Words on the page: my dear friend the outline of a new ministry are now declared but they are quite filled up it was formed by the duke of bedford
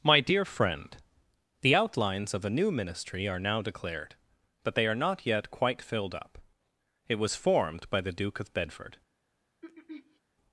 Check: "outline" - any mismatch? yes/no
yes